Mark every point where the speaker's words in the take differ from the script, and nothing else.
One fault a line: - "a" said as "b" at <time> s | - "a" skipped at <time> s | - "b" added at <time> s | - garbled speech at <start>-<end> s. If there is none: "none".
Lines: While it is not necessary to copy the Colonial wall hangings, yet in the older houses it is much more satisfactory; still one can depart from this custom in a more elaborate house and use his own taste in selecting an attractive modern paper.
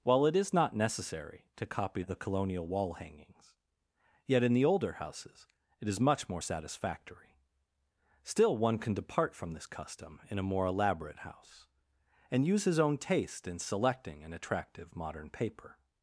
none